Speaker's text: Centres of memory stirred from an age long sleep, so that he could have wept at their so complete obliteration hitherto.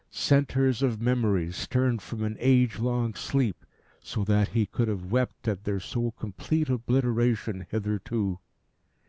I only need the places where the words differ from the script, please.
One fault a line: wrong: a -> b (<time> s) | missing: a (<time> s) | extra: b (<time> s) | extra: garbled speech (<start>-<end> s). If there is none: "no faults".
no faults